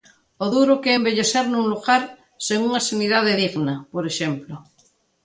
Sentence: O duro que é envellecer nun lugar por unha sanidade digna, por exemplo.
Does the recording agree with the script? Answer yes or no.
no